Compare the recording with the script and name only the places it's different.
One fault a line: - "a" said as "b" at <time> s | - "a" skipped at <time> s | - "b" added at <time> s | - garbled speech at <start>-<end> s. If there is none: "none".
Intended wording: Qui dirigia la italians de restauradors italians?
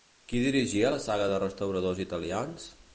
- "italians" said as "saga" at 1.1 s